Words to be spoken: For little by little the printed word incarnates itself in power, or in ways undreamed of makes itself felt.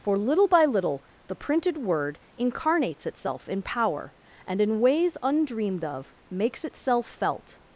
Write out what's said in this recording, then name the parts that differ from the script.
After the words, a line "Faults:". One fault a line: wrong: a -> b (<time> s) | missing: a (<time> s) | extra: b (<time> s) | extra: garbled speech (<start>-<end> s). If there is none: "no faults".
For little by little the printed word incarnates itself in power, and in ways undreamed of makes itself felt.
Faults:
wrong: or -> and (4.5 s)